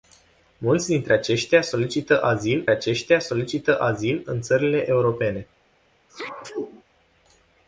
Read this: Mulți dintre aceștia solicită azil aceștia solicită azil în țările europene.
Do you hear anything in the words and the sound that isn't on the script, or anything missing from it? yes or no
yes